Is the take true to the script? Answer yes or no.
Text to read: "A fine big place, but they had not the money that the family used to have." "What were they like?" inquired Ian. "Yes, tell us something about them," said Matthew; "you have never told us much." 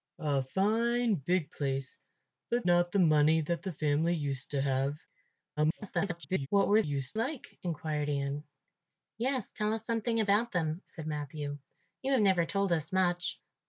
no